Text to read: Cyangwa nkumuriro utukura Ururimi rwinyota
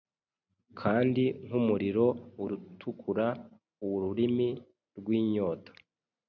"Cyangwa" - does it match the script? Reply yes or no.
no